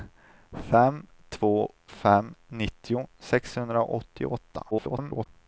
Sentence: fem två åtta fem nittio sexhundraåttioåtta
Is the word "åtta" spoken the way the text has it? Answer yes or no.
no